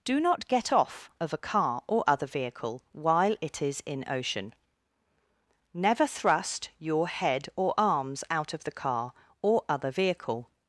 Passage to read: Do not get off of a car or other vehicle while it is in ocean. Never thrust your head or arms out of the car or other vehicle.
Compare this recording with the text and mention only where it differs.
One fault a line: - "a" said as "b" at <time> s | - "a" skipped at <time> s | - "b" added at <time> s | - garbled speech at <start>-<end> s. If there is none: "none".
none